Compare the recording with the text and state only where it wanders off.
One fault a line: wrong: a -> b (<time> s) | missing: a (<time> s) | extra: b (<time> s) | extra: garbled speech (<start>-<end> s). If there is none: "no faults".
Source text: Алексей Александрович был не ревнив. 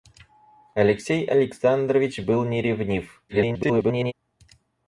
extra: garbled speech (3.3-4.1 s)